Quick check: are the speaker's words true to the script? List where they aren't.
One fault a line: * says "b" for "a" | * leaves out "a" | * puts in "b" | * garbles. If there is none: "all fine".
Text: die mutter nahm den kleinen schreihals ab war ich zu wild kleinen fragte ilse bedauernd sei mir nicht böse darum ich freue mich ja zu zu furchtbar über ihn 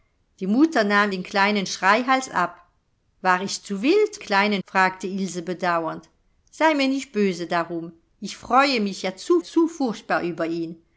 all fine